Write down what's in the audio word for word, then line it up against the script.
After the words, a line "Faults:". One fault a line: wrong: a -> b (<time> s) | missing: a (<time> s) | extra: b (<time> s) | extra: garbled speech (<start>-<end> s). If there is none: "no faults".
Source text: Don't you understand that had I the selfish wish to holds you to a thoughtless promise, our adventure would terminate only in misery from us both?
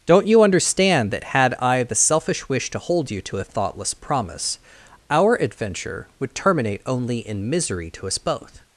Don't you understand that had I the selfish wish to hold you to a thoughtless promise, our adventure would terminate only in misery to us both?
Faults:
wrong: holds -> hold (2.8 s)
wrong: from -> to (7.9 s)